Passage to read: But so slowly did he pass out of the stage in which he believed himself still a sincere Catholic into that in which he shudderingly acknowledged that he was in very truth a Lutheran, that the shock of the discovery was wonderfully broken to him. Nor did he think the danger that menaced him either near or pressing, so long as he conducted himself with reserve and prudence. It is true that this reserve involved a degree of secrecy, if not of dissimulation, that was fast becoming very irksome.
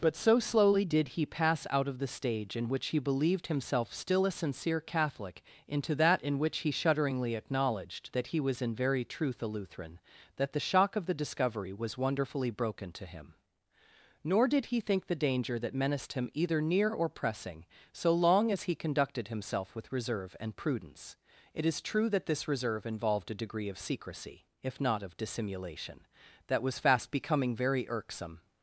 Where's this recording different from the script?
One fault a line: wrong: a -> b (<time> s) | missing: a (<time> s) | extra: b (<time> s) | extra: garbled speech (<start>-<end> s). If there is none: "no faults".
no faults